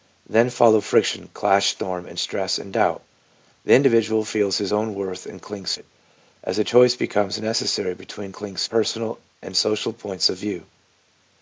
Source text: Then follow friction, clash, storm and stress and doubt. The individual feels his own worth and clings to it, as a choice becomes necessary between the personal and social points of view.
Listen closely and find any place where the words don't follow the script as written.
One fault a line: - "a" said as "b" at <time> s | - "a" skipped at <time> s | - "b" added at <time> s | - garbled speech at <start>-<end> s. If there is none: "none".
- "to" skipped at 5.8 s
- "the" said as "clings" at 8.3 s